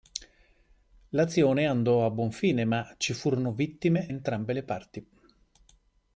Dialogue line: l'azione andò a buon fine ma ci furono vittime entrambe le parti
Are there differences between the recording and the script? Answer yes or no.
no